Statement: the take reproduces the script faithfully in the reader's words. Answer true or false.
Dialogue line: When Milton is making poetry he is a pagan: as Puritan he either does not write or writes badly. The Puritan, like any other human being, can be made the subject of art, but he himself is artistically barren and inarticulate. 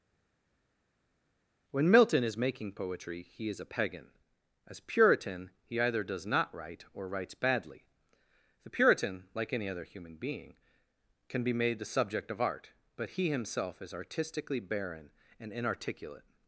true